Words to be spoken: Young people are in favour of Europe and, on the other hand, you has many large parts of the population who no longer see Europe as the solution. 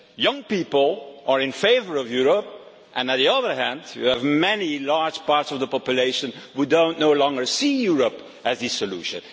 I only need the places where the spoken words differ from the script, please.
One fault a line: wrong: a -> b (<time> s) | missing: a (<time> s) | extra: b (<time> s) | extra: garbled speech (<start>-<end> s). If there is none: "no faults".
wrong: has -> have (4.0 s)